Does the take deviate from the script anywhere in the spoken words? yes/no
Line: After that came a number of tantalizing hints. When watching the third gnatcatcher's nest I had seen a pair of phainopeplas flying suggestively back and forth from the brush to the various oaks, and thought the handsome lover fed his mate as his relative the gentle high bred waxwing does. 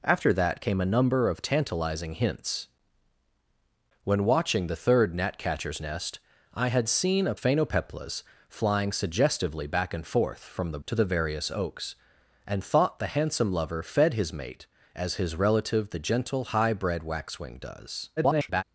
yes